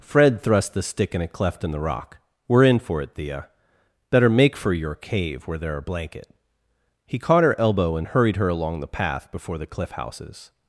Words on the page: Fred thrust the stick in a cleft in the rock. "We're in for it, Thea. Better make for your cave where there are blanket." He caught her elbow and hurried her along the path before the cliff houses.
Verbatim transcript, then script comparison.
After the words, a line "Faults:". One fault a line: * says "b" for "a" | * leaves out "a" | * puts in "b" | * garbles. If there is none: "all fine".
Fred thrust the stick in a cleft in the rock. "We're in for it, Thea. Better make for your cave where there are blanket." He caught her elbow and hurried her along the path before the cliff houses.
Faults:
all fine